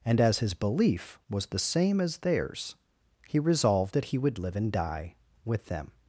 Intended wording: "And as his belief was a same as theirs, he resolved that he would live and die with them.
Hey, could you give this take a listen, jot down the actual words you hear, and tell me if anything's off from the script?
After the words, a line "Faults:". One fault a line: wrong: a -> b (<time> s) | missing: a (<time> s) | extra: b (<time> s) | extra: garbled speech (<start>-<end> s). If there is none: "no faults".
"And as his belief was the same as theirs, he resolved that he would live and die with them.
Faults:
wrong: a -> the (1.5 s)